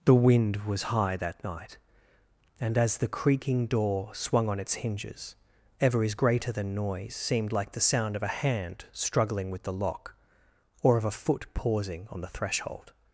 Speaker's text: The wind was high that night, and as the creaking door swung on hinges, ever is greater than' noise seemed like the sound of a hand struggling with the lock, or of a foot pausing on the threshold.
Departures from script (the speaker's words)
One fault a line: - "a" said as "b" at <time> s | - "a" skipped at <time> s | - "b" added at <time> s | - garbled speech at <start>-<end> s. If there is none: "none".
- "its" added at 4.6 s